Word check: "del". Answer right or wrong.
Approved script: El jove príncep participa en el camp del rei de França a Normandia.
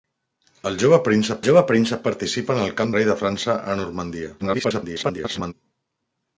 wrong